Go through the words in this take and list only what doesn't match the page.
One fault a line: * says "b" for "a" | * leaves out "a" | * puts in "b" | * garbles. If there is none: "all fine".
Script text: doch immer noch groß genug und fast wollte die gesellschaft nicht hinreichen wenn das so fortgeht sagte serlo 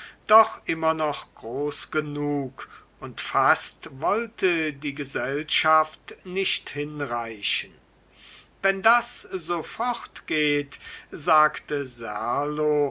all fine